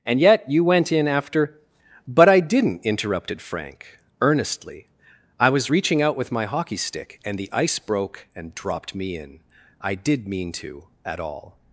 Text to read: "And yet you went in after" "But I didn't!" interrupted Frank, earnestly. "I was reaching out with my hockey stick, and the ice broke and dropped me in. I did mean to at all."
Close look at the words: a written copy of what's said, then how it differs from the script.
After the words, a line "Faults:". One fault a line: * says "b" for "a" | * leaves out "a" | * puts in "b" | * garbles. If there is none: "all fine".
"And yet you went in after" "But I didn't!" interrupted Frank, earnestly. "I was reaching out with my hockey stick, and the ice broke and dropped me in. I did mean to at all."
Faults:
all fine